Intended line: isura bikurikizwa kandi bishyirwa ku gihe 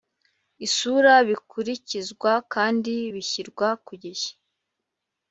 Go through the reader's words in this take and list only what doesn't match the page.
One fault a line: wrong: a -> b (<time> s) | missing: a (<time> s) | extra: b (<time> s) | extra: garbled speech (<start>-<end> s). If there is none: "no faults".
no faults